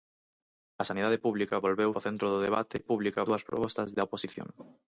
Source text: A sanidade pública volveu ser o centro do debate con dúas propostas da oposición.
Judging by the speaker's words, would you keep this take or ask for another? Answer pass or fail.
fail